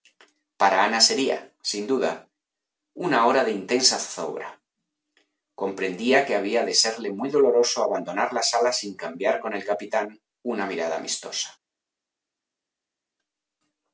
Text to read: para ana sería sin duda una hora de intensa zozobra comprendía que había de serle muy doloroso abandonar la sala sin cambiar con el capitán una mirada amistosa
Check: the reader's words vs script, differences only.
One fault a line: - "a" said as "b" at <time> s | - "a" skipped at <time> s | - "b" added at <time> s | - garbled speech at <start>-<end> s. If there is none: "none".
none